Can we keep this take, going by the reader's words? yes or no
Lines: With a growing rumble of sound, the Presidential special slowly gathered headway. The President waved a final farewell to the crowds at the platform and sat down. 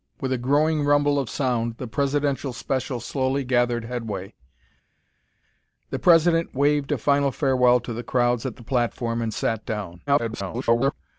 no